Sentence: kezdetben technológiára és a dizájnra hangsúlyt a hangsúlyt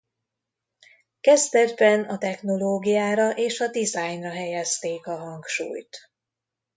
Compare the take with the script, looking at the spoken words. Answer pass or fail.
fail